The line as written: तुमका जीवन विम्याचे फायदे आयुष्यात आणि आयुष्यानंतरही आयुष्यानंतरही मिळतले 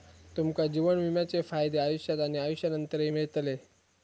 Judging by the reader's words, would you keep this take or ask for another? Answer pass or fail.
fail